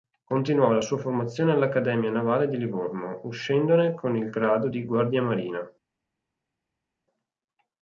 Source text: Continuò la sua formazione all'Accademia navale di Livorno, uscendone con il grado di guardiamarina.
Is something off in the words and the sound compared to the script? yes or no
no